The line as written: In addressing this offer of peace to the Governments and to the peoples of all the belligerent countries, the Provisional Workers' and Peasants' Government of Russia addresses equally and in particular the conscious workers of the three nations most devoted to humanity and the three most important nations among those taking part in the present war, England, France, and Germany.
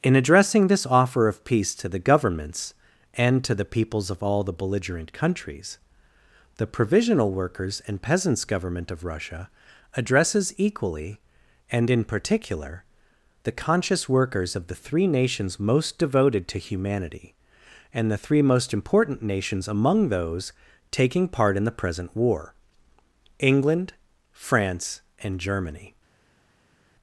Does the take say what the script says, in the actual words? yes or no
yes